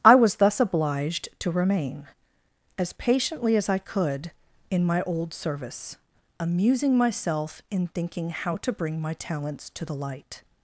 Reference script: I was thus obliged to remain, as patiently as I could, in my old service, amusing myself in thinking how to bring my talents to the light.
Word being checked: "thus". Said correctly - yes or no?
yes